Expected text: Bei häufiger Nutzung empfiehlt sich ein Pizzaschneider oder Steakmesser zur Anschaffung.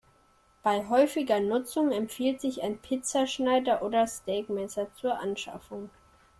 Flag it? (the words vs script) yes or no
no